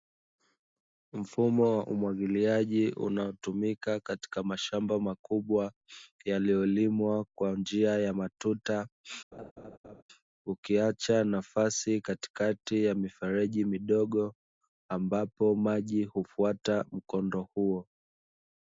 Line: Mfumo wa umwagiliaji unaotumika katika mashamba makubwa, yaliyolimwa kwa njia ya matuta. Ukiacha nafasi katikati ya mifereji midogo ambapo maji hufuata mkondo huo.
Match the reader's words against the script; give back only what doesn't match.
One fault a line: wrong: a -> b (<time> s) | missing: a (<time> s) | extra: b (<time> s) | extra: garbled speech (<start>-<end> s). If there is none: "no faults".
no faults